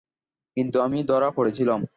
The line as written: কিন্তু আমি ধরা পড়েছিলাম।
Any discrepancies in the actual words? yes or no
no